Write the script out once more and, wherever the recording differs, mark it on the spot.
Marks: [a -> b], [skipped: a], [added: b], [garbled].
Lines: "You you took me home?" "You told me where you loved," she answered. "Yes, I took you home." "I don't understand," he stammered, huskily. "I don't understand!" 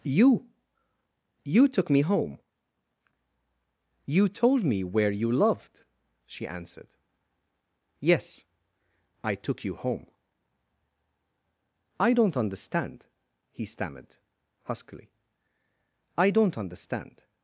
"You you took me home?" "You told me where you loved," she answered. "Yes, I took you home." "I don't understand," he stammered, huskily. "I don't understand!"